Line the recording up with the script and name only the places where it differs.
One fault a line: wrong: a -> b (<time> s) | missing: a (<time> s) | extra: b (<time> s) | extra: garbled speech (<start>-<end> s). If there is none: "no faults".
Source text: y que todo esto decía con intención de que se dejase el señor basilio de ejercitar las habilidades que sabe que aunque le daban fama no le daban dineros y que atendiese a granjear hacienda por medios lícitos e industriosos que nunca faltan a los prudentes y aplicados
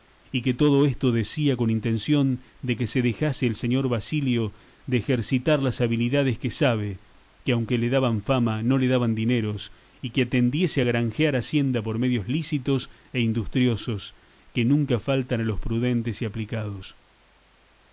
no faults